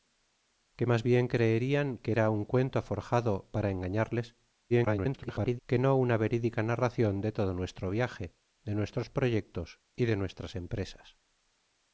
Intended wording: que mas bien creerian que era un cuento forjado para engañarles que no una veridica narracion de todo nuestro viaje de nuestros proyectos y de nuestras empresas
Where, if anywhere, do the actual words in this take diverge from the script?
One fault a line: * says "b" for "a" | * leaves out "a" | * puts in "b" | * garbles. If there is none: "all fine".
* garbles